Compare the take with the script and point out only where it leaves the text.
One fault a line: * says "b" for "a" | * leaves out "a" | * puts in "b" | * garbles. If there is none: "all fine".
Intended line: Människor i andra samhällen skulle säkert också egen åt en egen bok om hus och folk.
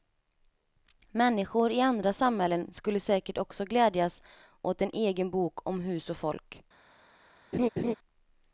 * says "glädjas" for "egen"